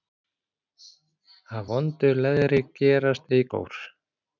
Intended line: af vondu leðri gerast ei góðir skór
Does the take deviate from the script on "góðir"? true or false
true